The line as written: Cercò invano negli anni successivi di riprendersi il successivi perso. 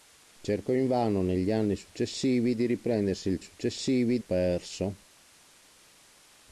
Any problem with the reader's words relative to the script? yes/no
no